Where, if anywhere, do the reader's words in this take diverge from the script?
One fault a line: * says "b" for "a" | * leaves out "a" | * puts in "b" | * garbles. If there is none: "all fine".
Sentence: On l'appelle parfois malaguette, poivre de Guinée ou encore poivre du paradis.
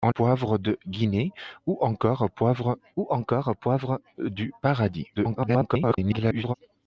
* says "poivre de Guinée ou encore poivre" for "l'appelle parfois malaguette poivre de Guinée"
* garbles